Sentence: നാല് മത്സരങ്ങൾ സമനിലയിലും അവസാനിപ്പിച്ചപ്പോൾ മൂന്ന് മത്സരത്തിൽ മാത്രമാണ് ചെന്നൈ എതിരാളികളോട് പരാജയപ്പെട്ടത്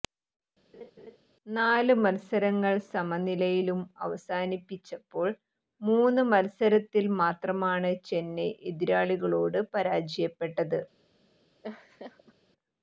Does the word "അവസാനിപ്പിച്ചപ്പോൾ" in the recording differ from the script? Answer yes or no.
no